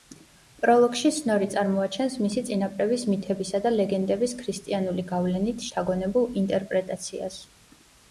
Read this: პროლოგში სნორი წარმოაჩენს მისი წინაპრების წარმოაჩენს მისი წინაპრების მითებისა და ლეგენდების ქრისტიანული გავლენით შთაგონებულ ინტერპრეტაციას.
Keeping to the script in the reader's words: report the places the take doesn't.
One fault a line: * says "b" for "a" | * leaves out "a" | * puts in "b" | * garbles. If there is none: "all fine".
* leaves out "წარმოაჩენს მისი წინაპრების"